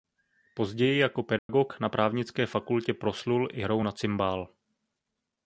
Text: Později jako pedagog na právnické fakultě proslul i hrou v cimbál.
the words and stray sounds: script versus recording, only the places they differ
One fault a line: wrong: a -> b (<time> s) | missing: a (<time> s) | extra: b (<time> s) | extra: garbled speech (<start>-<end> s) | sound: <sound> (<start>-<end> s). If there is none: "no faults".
sound: dropout (1.4-1.5 s)
wrong: v -> na (3.8 s)